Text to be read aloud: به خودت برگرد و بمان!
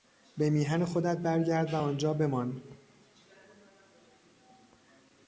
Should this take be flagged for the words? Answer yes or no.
yes